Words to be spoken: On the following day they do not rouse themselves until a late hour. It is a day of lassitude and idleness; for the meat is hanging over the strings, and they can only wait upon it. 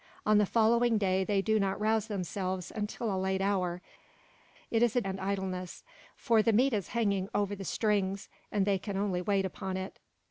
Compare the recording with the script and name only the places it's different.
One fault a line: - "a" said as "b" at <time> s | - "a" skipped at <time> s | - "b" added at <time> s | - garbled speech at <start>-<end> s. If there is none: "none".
- "day of lassitude" skipped at 5.0 s